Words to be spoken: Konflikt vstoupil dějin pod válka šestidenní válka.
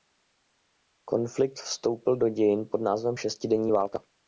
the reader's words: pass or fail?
fail